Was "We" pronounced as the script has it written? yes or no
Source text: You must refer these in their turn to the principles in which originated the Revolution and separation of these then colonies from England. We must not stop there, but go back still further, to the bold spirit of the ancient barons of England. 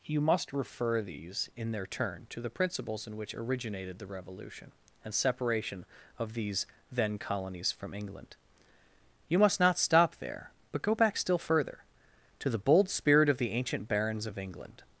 no